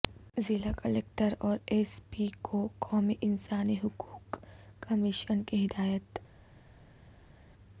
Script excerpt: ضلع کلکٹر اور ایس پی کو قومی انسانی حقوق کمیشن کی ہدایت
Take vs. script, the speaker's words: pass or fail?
pass